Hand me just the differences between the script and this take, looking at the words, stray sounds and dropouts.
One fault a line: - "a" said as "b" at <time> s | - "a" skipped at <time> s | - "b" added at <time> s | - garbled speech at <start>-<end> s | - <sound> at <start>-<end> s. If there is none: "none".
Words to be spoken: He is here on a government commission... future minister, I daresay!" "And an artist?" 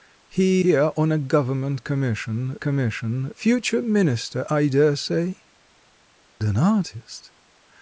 - "is" skipped at 0.7 s
- "commission" added at 2.6 s
- "And" skipped at 5.4 s